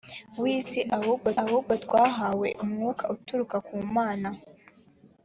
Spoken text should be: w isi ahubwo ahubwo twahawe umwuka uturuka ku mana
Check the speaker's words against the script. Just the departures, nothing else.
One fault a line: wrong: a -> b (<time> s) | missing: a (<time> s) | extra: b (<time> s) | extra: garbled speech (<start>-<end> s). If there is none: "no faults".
no faults